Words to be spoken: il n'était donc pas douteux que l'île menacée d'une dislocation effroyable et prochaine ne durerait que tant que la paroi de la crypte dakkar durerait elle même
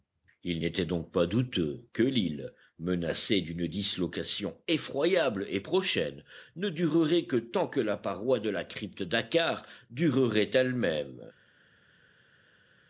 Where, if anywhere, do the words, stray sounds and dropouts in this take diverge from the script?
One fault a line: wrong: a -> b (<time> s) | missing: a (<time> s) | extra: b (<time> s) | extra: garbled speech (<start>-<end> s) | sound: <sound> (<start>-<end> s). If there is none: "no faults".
no faults